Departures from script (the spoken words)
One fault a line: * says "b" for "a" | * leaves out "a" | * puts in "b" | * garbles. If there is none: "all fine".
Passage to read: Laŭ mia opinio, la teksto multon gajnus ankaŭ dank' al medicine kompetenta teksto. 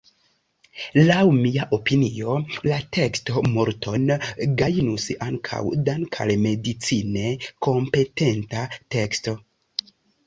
all fine